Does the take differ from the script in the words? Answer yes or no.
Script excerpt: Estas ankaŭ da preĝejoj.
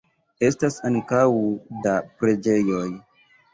no